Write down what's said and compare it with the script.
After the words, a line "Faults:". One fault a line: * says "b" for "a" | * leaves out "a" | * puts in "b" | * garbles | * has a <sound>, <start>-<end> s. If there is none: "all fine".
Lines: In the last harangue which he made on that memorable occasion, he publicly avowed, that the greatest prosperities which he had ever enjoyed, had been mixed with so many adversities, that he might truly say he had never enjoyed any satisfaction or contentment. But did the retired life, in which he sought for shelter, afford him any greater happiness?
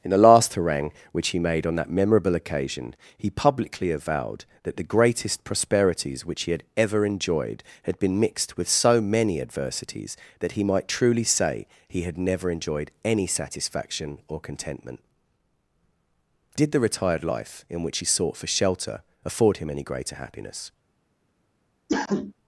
In the last harangue which he made on that memorable occasion, he publicly avowed, that the greatest prosperities which he had ever enjoyed, had been mixed with so many adversities, that he might truly say he had never enjoyed any satisfaction or contentment. Did the retired life, in which he sought for shelter, afford him any greater happiness?
Faults:
* leaves out "But"
* has a cough, 21.9-22.3 s